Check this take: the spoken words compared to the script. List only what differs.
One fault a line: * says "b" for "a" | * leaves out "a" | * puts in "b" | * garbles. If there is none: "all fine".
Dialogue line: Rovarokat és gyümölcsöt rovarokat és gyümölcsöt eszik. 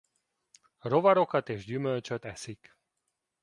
* leaves out "rovarokat és gyümölcsöt"